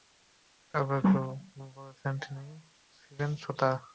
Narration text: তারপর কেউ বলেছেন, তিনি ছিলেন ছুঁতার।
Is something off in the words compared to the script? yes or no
no